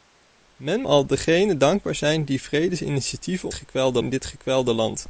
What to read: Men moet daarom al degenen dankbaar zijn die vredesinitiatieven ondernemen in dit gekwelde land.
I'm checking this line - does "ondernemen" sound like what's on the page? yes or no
no